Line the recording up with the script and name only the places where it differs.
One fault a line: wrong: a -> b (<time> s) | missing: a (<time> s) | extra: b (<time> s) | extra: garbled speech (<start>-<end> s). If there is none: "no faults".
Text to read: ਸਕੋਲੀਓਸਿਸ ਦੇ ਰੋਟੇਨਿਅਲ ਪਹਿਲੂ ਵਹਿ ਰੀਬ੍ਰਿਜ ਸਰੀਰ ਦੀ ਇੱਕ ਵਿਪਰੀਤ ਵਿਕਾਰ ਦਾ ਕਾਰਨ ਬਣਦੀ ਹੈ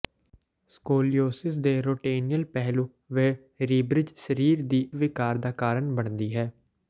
missing: ਇੱਕ ਵਿਪਰੀਤ (4.8 s)